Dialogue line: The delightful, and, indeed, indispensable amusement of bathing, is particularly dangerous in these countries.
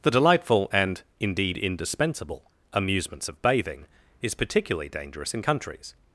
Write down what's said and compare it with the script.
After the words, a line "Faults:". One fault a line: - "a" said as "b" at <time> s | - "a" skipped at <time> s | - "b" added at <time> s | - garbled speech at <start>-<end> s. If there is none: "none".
The delightful, and, indeed, indispensable amusements of bathing, is particularly dangerous in countries.
Faults:
- "amusement" said as "amusements" at 2.7 s
- "these" skipped at 5.4 s